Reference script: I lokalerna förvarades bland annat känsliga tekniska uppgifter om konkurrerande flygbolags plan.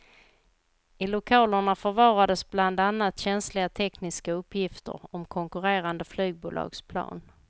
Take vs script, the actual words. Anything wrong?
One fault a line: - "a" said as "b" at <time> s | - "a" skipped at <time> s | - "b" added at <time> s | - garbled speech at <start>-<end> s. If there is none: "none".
none